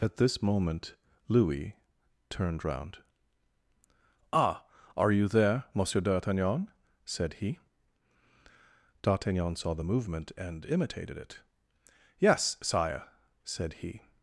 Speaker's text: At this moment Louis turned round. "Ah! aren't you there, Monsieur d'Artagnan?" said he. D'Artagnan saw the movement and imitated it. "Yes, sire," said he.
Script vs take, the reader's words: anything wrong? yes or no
yes